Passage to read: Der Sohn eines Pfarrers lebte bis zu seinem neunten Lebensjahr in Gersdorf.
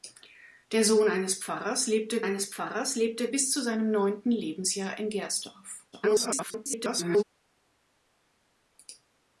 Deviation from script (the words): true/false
true